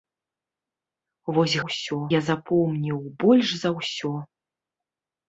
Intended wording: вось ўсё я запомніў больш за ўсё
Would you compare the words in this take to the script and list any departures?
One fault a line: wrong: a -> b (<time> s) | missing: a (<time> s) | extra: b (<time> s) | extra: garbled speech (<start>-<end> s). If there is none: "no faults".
no faults